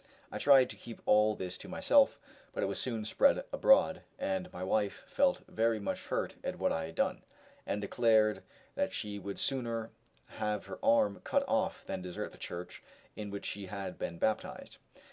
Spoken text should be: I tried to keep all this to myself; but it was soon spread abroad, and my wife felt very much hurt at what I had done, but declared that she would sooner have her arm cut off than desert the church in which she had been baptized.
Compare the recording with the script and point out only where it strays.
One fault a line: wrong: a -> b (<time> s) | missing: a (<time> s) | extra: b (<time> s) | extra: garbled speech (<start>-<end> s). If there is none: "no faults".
wrong: but -> and (7.7 s)